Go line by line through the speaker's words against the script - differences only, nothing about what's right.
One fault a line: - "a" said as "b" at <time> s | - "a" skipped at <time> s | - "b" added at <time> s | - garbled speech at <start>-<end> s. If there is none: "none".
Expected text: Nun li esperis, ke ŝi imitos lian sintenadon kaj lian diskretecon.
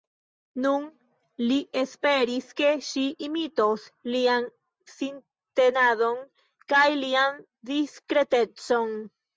none